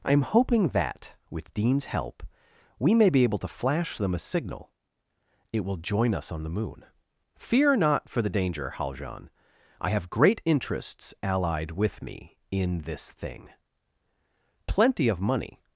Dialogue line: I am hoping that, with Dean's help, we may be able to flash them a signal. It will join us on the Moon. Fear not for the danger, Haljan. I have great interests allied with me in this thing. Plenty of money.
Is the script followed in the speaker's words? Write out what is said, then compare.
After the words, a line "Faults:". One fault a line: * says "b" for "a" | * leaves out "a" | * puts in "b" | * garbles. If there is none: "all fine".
I am hoping that, with Dean's help, we may be able to flash them a signal. It will join us on the Moon. Fear not for the danger, Haljan. I have great interests allied with me in this thing. Plenty of money.
Faults:
all fine